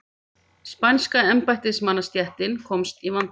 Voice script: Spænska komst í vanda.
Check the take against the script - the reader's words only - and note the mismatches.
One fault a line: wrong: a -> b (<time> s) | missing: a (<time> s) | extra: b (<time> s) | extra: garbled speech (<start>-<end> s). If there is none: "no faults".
extra: embættismannastéttin (1.3 s)